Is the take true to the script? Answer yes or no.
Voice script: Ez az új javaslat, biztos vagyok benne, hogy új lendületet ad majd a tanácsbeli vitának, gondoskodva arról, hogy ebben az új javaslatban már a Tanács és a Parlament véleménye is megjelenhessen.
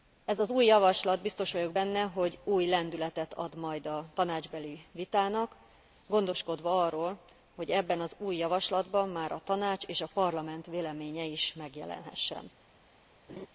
yes